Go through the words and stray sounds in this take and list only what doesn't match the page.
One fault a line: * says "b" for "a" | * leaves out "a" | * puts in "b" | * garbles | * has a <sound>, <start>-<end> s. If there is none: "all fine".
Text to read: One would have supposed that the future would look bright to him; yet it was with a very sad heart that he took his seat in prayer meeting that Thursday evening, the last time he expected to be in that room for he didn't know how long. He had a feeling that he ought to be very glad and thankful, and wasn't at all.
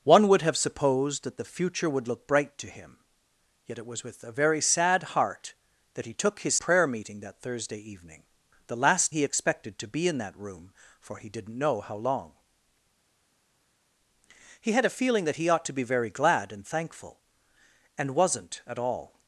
* leaves out "seat in"
* leaves out "time"